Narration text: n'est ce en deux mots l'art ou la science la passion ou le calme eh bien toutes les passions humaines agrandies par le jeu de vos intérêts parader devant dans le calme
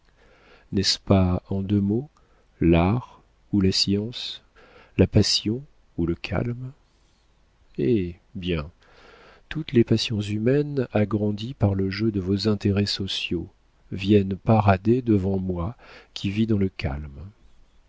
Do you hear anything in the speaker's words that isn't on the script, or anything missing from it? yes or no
yes